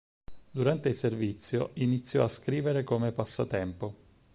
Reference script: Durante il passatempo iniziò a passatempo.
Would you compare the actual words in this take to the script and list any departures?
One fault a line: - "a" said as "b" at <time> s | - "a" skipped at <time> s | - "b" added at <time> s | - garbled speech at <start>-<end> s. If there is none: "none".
- "passatempo" said as "servizio" at 0.9 s
- "scrivere come" added at 2.3 s